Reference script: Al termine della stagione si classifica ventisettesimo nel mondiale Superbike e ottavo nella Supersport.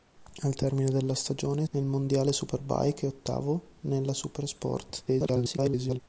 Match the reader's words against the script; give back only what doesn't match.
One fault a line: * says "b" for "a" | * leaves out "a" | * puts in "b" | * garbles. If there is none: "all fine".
* leaves out "si classifica ventisettesimo"
* garbles